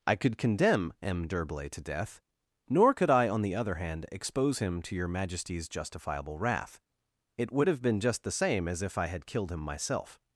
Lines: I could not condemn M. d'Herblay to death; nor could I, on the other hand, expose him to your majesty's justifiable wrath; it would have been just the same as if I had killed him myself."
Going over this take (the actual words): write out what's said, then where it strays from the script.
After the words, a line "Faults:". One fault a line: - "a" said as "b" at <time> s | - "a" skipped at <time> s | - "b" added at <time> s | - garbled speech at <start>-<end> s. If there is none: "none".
I could condemn M. d'Herblay to death; nor could I, on the other hand, expose him to your majesty's justifiable wrath; it would have been just the same as if I had killed him myself."
Faults:
- "not" skipped at 0.4 s